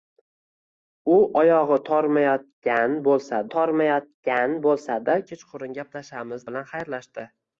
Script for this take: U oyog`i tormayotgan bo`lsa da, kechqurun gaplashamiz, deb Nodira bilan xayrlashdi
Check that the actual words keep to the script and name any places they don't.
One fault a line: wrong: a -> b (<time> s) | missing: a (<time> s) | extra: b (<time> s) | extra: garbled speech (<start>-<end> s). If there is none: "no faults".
extra: tormayotgan bo`lsa (3.5 s)
missing: deb Nodira (6.5 s)